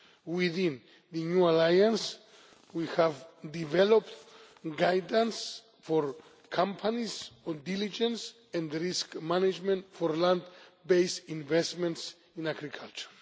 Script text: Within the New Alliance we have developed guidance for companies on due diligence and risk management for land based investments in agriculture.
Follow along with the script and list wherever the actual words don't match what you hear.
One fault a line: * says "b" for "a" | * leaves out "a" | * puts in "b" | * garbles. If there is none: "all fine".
* leaves out "due"